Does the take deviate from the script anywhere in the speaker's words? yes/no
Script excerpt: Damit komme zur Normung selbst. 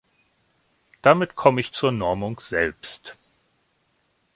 yes